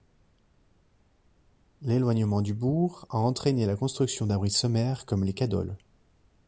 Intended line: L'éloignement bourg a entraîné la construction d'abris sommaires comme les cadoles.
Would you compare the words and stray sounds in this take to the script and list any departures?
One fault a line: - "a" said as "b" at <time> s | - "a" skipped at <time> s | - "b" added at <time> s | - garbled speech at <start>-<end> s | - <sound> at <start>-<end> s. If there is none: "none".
- "du" added at 2.4 s